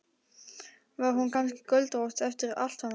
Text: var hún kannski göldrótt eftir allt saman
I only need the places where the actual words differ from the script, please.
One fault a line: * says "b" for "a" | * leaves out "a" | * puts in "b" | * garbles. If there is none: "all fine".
all fine